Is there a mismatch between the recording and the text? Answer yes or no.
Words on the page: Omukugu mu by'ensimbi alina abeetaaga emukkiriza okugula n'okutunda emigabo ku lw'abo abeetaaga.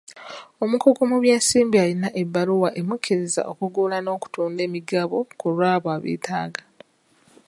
yes